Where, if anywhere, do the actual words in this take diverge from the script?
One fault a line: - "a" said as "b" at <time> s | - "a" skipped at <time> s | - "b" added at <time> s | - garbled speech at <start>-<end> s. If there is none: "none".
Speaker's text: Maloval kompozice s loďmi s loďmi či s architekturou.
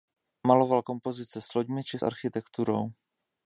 - "s loďmi" skipped at 1.8 s